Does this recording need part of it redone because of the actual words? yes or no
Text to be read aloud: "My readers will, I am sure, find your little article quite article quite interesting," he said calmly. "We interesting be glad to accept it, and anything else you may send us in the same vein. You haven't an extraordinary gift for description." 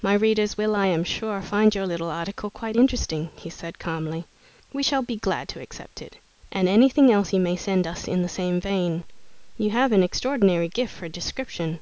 yes